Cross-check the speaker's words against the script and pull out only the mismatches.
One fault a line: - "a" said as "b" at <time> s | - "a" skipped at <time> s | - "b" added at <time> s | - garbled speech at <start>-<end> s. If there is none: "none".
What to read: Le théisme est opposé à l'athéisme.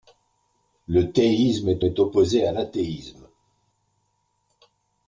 - "est" added at 1.8 s